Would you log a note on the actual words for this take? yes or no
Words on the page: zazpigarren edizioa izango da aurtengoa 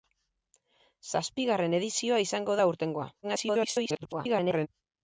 yes